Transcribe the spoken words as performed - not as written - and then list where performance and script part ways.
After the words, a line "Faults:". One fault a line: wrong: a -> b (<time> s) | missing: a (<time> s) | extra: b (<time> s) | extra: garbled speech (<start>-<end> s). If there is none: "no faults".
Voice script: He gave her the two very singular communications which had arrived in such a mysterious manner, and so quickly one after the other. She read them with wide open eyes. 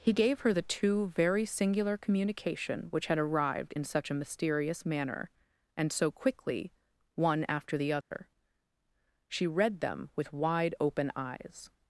He gave her the two very singular communication which had arrived in such a mysterious manner, and so quickly one after the other. She read them with wide open eyes.
Faults:
wrong: communications -> communication (2.0 s)